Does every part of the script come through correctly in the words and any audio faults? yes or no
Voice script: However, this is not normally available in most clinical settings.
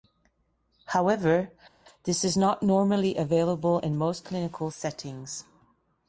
yes